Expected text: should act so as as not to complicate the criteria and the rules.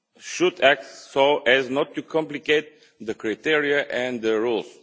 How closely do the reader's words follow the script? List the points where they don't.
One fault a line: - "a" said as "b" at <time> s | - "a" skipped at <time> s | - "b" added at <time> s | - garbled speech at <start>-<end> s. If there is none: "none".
- "as" skipped at 1.7 s